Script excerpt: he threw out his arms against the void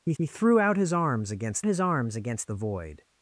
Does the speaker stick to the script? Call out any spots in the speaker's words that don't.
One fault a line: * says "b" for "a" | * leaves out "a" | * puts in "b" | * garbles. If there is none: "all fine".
* puts in "he"
* puts in "his arms against"